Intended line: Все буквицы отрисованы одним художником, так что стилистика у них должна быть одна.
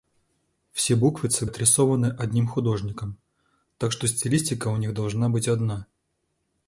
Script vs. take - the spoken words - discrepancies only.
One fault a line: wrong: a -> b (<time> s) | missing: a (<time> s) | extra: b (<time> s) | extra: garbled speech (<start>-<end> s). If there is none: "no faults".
no faults